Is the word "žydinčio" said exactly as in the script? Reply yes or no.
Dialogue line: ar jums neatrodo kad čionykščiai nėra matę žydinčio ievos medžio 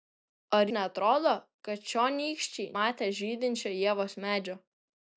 yes